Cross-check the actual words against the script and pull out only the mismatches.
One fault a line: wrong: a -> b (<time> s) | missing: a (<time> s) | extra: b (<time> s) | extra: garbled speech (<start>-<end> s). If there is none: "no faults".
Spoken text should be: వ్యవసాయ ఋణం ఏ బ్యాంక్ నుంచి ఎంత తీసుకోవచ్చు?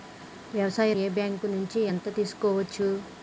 missing: ఋణం (0.9 s)